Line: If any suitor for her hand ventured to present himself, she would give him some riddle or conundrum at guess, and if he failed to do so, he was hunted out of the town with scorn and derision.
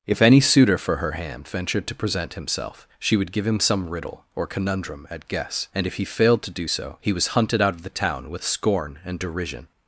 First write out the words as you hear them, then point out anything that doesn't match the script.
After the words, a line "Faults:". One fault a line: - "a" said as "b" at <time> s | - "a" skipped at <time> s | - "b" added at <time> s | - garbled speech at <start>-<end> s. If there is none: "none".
If any suitor for her hand ventured to present himself, she would give him some riddle or conundrum at guess, and if he failed to do so, he was hunted out of the town with scorn and derision.
Faults:
none